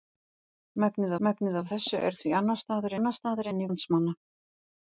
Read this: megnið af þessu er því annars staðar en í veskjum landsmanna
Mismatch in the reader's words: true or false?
true